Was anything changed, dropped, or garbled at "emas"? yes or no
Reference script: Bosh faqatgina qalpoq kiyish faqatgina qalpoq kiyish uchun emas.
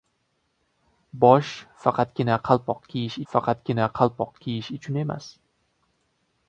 no